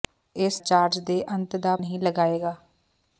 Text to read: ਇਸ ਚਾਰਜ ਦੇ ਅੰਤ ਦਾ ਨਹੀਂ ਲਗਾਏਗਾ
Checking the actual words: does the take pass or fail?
pass